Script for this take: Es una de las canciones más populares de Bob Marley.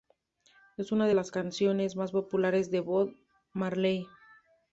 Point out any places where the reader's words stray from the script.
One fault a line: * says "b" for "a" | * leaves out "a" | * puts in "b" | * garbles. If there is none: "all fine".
all fine